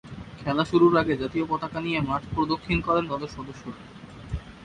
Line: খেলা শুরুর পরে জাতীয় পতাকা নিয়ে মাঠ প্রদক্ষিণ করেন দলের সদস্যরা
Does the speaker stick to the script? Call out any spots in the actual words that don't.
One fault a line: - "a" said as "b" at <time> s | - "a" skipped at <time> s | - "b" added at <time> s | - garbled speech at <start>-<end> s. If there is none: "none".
- "পরে" said as "আগে" at 1.0 s